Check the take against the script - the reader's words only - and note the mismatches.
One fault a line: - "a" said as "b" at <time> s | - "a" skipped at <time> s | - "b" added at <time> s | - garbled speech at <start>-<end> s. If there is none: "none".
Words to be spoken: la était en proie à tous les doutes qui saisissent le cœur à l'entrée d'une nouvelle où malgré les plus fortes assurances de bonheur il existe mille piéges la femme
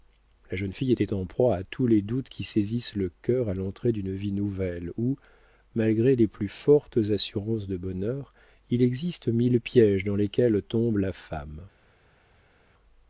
- "jeune fille" added at 0.6 s
- "vie" added at 4.2 s
- "dans lesquels tombe" added at 10.0 s